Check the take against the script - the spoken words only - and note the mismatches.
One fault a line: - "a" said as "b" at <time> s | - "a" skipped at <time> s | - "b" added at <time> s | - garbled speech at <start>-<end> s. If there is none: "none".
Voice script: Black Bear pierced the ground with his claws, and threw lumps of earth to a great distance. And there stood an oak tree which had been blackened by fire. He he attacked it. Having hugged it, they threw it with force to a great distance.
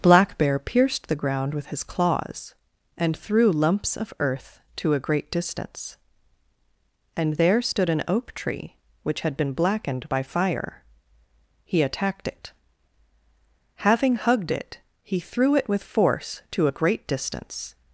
- "he" skipped at 11.8 s
- "they" said as "he" at 15.0 s